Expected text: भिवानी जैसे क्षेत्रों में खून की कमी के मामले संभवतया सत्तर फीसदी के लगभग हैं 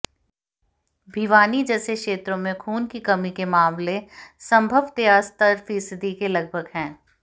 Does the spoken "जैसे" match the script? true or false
true